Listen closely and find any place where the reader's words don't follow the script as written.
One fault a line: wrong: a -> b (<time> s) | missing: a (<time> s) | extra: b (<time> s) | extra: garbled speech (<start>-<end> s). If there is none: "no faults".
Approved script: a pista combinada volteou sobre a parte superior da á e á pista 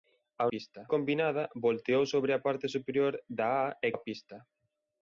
no faults